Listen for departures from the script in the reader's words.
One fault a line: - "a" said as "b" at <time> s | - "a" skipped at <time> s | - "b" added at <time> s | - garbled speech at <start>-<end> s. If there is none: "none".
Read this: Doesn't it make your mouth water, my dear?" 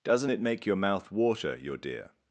- "my" said as "your" at 1.6 s